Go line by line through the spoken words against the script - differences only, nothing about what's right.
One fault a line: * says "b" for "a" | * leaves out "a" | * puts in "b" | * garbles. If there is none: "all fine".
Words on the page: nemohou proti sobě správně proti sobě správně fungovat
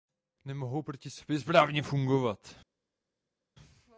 * leaves out "proti sobě správně"